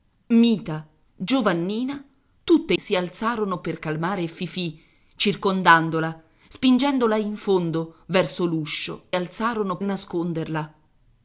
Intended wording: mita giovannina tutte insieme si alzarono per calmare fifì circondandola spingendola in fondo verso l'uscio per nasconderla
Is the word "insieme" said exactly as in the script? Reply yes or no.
no